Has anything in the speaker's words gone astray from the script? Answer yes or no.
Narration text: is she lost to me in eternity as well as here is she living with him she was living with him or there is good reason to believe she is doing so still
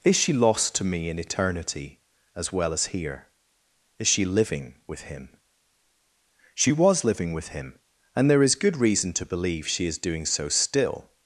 yes